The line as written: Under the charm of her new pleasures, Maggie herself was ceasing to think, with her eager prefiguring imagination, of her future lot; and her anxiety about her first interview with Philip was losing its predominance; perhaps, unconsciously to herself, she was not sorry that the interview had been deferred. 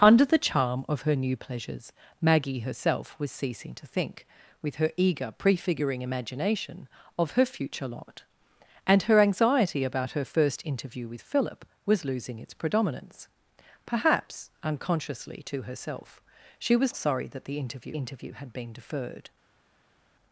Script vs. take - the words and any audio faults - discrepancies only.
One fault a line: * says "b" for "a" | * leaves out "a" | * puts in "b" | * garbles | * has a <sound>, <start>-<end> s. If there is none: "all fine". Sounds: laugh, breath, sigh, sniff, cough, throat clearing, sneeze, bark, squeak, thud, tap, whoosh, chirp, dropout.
* leaves out "not"
* puts in "interview"